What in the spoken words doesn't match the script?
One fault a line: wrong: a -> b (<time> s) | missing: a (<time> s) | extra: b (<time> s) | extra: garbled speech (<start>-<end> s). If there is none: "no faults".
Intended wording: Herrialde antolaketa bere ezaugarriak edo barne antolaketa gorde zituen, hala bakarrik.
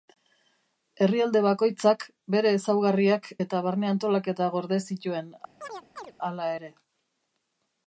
wrong: antolaketa -> bakoitzak (1.5 s)
wrong: edo -> eta (3.5 s)
wrong: bakarrik -> ere (6.6 s)